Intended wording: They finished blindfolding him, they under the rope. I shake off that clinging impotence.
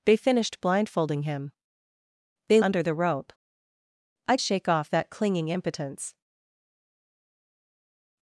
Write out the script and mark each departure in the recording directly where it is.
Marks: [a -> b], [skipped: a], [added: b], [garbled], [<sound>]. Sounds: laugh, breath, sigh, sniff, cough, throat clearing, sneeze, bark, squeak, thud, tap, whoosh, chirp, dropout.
They finished blindfolding him, they under the rope. I shake off that clinging impotence.